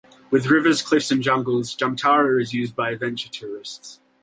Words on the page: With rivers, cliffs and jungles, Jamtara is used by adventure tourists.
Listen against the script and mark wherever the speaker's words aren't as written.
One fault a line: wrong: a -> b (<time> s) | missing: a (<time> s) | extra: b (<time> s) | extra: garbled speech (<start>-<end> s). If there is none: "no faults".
no faults